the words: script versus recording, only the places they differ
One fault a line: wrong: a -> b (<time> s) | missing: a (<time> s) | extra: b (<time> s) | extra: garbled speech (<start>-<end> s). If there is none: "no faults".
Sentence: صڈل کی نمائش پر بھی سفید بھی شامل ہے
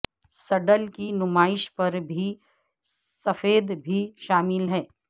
no faults